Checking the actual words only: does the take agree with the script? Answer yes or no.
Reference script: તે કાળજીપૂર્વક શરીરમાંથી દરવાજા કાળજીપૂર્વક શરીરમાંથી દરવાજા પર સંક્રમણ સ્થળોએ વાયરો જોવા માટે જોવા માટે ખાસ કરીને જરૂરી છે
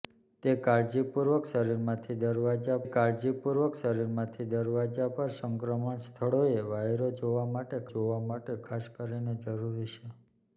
yes